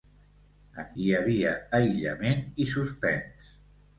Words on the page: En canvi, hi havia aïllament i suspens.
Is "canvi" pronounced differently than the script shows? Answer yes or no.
yes